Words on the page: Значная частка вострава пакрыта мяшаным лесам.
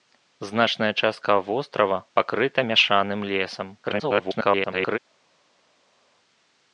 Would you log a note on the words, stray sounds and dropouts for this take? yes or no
yes